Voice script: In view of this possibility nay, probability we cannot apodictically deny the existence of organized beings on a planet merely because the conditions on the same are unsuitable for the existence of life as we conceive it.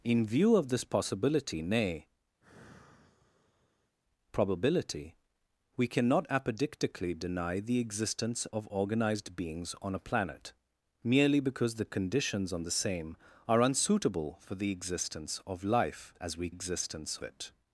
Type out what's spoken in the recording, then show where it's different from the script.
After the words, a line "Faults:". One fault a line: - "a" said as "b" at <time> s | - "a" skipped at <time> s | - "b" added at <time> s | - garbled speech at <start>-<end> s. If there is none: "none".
In view of this possibility nay, probability we cannot apodictically deny the existence of organized beings on a planet merely because the conditions on the same are unsuitable for the existence of life as we existence it.
Faults:
- "conceive" said as "existence" at 16.5 s